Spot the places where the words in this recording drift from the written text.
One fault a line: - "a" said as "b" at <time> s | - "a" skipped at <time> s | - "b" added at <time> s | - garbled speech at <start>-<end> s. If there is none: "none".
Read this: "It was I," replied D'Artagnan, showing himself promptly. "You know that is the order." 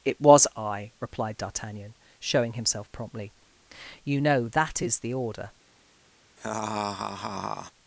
none